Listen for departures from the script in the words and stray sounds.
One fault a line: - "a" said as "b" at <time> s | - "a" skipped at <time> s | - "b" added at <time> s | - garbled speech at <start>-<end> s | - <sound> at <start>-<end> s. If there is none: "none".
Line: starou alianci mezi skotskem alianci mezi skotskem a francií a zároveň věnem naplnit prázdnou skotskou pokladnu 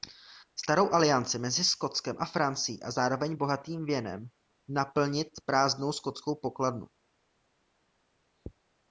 - "alianci mezi skotskem" skipped at 2.2 s
- "bohatým" added at 3.3 s